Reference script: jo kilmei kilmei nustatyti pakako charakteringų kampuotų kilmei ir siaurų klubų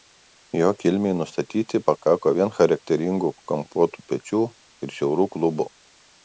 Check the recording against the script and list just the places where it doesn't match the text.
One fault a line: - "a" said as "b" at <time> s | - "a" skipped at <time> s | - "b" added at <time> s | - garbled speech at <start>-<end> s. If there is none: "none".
- "kilmei" skipped at 1.1 s
- "vien" added at 2.4 s
- "kilmei" said as "pečių" at 4.1 s